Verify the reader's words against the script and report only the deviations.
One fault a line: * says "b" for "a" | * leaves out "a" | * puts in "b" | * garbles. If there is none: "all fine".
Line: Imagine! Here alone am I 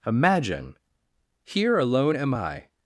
all fine